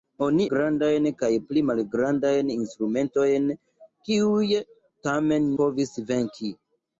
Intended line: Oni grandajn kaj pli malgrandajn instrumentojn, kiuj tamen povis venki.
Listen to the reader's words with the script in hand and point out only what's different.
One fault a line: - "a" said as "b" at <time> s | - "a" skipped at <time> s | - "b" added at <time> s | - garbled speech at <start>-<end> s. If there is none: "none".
none